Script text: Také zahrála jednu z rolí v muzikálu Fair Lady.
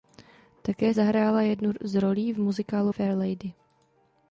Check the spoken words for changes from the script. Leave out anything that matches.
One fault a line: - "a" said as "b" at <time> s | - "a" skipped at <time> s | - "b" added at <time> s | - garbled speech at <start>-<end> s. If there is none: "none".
none